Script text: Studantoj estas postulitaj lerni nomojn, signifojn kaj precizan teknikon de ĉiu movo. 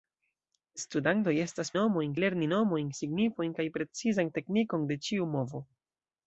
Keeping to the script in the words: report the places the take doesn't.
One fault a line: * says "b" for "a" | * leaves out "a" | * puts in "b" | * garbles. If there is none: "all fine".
* says "nomojn" for "postulitaj"